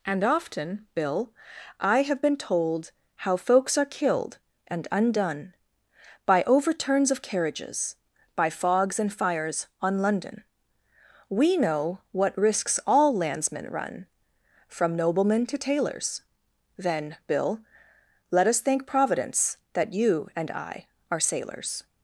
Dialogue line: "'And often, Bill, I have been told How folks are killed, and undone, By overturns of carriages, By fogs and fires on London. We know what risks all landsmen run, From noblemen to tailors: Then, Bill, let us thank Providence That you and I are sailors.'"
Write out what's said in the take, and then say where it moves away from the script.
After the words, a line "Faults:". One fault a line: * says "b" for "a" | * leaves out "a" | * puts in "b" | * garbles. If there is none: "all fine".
"'And often, Bill, I have been told How folks are killed, and undone, By overturns of carriages, By fogs and fires on London. We know what risks all landsmen run, From noblemen to tailors: Then, Bill, let us thank Providence That you and I are sailors.'"
Faults:
all fine